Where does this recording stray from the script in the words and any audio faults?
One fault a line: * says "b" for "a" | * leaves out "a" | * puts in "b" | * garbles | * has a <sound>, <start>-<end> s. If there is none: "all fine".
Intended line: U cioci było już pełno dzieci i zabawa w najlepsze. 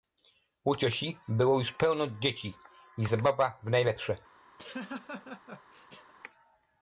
* has a laugh, 4.6-6.1 s